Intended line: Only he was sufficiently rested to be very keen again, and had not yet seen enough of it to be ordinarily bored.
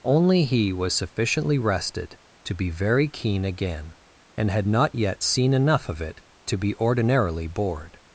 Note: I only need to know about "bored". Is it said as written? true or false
true